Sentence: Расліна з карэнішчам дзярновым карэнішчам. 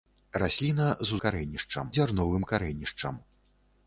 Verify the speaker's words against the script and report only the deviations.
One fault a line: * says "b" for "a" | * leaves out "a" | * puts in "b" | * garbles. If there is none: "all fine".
all fine